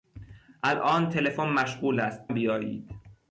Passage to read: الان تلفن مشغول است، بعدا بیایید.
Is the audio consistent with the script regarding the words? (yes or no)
no